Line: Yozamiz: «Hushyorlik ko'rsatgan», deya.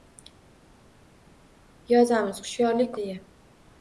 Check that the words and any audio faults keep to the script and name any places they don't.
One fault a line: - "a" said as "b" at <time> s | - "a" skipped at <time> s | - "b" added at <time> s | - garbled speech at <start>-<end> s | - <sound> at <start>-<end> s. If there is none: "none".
- "ko'rsatgan" skipped at 2.9 s